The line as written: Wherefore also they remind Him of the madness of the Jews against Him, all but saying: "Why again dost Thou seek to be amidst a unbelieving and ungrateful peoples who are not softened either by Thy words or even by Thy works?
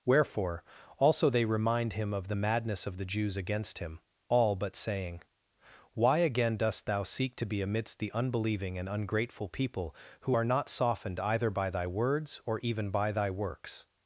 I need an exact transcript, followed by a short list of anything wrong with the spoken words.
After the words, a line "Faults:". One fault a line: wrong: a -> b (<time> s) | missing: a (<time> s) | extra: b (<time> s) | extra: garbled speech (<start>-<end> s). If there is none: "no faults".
Wherefore also they remind Him of the madness of the Jews against Him, all but saying: "Why again dost Thou seek to be amidst the unbelieving and ungrateful people who are not softened either by Thy words or even by Thy works?
Faults:
wrong: a -> the (8.0 s)
wrong: peoples -> people (9.5 s)